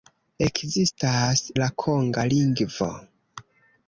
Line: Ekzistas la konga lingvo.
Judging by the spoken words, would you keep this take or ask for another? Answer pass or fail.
pass